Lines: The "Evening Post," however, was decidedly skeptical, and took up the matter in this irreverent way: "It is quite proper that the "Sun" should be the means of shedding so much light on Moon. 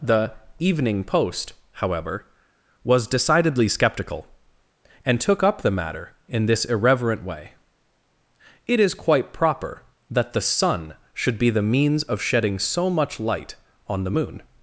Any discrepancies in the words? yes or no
yes